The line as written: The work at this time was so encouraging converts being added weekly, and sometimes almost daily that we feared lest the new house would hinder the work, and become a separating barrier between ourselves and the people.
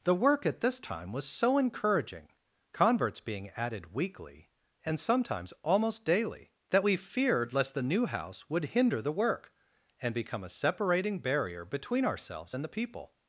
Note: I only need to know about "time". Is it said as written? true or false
true